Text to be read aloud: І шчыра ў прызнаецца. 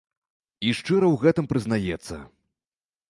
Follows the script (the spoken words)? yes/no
no